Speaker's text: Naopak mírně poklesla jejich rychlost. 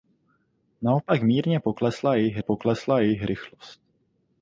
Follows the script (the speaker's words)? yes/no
no